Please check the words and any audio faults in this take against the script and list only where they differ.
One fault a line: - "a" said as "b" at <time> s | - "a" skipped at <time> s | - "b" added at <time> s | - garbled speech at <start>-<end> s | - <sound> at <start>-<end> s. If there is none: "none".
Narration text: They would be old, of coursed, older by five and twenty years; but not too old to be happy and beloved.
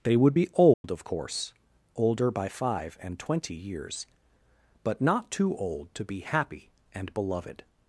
- dropout at 0.7-0.8 s
- "coursed" said as "course" at 1.0 s